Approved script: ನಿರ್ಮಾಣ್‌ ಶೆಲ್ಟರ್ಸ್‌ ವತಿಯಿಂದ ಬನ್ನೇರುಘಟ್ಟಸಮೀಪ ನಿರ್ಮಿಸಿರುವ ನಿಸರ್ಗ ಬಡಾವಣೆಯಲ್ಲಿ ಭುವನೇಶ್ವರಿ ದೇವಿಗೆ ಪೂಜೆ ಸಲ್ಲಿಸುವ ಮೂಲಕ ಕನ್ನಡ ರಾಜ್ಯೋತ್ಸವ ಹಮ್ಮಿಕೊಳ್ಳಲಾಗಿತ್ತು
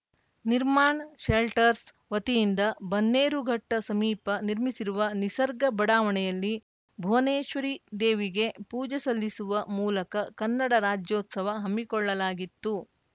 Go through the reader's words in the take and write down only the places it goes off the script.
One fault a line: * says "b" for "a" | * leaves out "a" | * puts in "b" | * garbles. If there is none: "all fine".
all fine